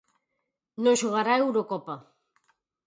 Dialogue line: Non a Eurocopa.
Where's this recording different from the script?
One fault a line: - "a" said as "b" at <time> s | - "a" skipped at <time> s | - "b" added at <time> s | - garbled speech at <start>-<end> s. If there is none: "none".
- "xogará" added at 1.0 s